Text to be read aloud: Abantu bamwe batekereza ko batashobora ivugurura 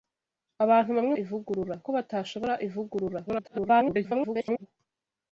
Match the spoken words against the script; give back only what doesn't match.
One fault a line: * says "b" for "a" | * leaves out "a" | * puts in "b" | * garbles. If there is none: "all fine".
* says "ivugurura" for "batekereza"
* garbles